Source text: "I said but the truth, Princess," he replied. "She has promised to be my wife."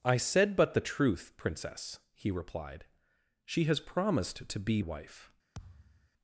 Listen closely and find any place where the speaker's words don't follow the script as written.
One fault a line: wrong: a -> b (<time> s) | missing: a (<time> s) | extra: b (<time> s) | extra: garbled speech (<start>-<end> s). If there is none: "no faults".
missing: my (4.8 s)